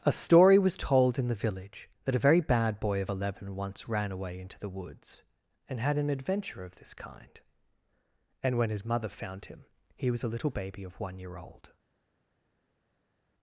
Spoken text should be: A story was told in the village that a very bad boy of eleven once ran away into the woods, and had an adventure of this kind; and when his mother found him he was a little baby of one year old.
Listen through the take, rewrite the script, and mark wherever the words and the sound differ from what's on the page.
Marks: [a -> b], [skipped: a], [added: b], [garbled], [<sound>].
A story was told in the village that a very bad boy of eleven once ran away into the woods, and had an adventure of this kind; and when his mother found him he was a little baby of one year old.